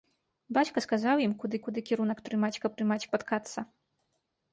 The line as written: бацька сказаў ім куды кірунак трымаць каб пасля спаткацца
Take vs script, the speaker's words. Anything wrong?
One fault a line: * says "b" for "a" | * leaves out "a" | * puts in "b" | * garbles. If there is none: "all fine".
* puts in "куды"
* says "трымаць" for "пасля"